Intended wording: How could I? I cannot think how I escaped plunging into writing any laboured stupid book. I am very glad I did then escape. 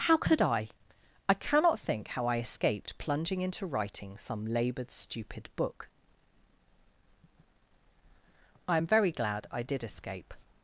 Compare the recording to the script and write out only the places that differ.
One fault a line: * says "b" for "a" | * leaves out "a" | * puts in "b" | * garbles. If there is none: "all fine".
* says "some" for "any"
* leaves out "then"